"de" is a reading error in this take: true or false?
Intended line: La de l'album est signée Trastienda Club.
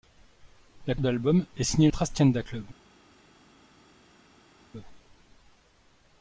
false